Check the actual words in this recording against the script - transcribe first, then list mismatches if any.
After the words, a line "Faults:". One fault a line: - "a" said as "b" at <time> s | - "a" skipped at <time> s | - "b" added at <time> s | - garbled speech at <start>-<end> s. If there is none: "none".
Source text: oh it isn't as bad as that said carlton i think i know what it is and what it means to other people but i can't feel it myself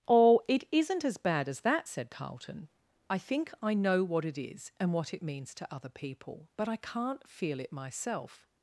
oh it isn't as bad as that said carlton i think i know what it is and what it means to other people but i can't feel it myself
Faults:
none